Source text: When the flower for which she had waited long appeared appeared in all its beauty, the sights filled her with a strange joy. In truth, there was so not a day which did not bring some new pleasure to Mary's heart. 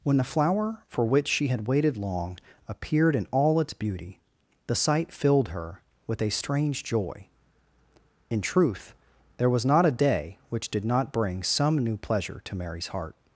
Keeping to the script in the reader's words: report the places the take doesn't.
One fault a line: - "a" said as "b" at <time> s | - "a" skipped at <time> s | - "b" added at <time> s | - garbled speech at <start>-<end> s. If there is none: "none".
- "appeared" skipped at 3.1 s
- "sights" said as "sight" at 4.8 s
- "so" skipped at 9.7 s